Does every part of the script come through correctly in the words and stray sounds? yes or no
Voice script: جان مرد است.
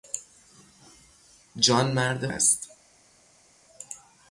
yes